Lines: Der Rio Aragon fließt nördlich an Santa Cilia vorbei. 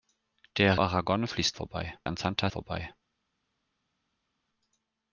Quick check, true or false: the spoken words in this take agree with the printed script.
false